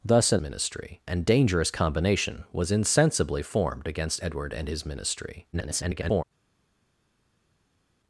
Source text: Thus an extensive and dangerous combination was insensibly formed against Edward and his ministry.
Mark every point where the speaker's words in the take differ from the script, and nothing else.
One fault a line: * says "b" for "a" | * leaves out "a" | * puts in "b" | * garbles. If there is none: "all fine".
* says "ministry" for "extensive"
* garbles